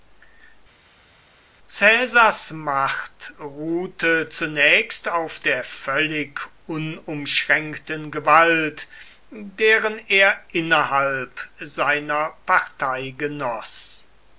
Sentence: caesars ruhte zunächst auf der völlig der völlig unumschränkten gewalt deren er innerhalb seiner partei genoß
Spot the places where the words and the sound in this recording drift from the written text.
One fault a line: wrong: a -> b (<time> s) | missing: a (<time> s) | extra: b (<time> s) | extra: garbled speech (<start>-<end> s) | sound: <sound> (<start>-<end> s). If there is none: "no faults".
extra: macht (2.5 s)
missing: der völlig (6.4 s)